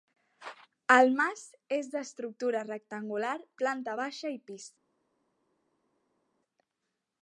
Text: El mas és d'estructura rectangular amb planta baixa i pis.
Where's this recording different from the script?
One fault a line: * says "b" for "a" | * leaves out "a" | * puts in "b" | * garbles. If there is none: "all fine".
* leaves out "amb"